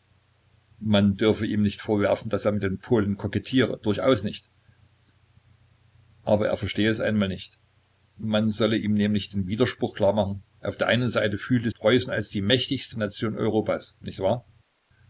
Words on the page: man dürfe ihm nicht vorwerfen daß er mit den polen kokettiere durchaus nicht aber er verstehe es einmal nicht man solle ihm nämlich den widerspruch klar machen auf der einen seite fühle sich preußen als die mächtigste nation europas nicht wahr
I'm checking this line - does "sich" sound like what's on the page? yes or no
no